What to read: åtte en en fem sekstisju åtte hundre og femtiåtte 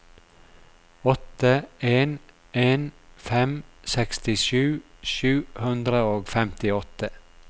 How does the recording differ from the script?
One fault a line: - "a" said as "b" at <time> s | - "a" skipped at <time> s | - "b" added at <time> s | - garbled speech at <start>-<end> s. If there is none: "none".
- "åtte" said as "sju" at 5.1 s